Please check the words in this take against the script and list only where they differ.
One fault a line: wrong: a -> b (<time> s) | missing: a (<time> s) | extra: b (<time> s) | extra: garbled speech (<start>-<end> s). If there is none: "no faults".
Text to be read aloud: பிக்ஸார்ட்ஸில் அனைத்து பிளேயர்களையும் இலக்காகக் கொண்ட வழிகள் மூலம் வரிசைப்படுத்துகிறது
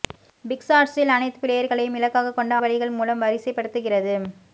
no faults